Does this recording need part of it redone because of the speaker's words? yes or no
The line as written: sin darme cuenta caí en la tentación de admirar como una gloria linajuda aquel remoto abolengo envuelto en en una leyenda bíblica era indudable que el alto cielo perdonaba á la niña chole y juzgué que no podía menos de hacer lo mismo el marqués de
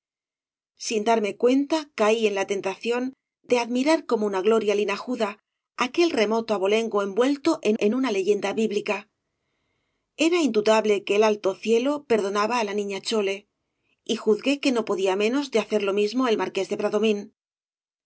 no